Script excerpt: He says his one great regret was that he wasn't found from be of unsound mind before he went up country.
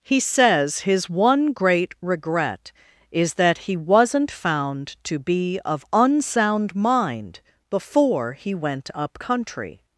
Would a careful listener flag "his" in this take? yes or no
no